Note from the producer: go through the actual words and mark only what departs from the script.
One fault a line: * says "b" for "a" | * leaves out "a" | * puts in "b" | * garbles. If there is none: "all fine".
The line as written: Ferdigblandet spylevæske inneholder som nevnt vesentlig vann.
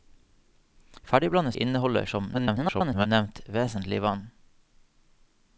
* leaves out "spylevæske"
* garbles